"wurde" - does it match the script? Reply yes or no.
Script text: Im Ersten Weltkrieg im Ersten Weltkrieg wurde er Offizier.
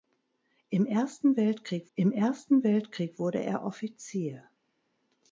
yes